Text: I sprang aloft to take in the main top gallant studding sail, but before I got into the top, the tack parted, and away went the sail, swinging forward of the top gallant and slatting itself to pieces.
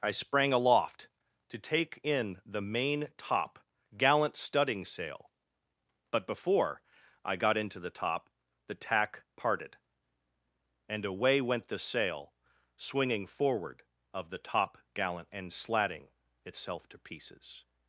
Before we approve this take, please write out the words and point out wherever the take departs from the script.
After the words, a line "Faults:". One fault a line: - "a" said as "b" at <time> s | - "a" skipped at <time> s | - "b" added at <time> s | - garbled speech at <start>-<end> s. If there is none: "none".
I sprang aloft to take in the main top gallant studding sail, but before I got into the top, the tack parted, and away went the sail, swinging forward of the top gallant and slatting itself to pieces.
Faults:
none